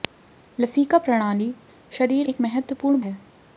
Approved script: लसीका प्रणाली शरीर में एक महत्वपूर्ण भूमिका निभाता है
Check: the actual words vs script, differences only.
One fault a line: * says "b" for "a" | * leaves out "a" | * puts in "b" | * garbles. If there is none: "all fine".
* leaves out "में"
* leaves out "भूमिका निभाता"